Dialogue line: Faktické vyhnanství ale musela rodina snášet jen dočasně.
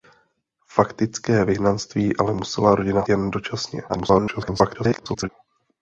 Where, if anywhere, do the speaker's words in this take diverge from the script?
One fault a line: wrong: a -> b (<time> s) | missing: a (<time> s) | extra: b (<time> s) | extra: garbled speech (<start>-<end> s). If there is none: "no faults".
missing: snášet (3.1 s)
extra: garbled speech (3.9-5.3 s)